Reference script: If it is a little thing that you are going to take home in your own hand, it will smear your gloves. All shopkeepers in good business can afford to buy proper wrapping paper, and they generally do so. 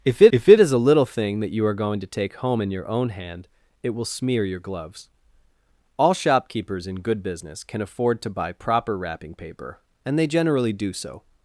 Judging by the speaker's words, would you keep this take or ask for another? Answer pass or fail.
fail